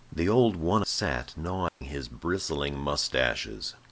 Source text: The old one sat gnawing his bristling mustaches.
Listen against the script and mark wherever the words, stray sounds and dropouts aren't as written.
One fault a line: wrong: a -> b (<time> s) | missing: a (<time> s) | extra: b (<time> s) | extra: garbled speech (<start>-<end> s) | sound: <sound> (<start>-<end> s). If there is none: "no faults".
sound: dropout (1.7-1.8 s)